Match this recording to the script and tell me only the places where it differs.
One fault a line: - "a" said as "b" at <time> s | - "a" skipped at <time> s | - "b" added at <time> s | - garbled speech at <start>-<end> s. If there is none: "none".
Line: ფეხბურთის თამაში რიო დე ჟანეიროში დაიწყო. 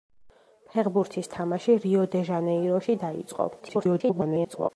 - garbled speech at 3.6-4.7 s